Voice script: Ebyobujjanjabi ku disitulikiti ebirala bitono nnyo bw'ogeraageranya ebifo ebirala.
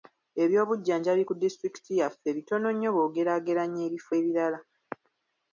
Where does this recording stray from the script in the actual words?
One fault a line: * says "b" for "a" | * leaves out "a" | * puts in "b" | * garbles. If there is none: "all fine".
* says "yaffe" for "ebirala"